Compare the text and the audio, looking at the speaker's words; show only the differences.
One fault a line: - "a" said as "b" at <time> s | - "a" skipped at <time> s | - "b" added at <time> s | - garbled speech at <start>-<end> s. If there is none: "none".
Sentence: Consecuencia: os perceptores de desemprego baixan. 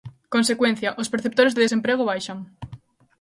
none